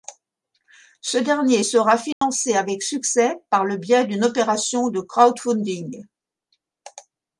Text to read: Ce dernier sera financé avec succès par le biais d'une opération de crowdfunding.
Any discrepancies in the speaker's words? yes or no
no